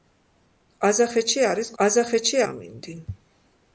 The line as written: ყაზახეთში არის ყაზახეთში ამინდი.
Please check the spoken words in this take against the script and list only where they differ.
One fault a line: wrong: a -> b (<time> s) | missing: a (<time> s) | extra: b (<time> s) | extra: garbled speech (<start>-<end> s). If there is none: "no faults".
no faults